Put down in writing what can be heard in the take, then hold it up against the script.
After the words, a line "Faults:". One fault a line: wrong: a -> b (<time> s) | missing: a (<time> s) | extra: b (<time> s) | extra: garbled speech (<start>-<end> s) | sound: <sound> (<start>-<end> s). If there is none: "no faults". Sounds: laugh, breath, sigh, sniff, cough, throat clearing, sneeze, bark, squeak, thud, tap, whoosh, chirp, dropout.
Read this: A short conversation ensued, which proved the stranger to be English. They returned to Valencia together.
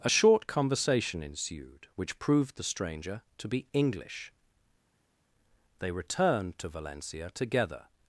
A short conversation ensued, which proved the stranger to be English. They returned to Valencia together.
Faults:
no faults